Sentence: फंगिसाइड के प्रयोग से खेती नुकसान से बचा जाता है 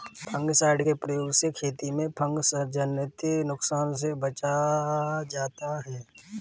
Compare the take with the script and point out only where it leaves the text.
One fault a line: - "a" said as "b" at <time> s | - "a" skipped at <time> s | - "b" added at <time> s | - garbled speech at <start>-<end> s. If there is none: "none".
- "में फँगसजनित" added at 1.9 s